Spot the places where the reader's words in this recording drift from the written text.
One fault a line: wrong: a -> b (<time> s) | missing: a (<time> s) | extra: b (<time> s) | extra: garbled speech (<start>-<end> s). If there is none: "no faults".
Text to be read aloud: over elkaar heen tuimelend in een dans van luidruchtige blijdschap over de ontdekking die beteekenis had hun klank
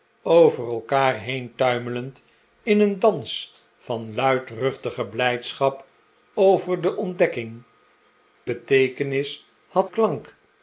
missing: die (7.6 s)
missing: hun (9.9 s)